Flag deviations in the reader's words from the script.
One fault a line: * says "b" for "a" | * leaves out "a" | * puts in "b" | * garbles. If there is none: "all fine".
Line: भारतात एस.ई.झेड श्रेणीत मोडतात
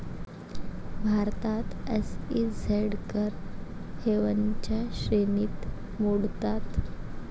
* puts in "कर हेवनच्या"